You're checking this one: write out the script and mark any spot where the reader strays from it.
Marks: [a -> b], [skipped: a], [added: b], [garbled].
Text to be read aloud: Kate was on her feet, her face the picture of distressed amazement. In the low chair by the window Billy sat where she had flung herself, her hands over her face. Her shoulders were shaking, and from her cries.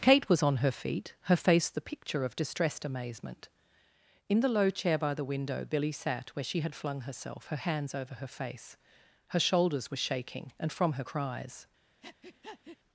Kate was on her feet, her face the picture of distressed amazement. In the low chair by the window Billy sat where she had flung herself, her hands over her face. Her shoulders were shaking, and from her cries.